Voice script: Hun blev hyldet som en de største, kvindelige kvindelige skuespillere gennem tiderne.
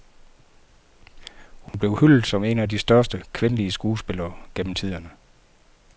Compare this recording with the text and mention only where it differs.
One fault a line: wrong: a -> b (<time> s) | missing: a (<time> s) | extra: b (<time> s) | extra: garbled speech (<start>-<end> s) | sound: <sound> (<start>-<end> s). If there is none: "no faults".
sound: dropout (1.7-1.7 s)
extra: af (2.6 s)
missing: kvindelige (3.7 s)